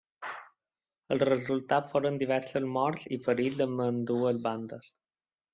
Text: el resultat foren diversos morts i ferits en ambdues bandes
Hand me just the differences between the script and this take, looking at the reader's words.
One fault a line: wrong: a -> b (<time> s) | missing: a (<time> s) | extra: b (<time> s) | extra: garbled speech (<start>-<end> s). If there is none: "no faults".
no faults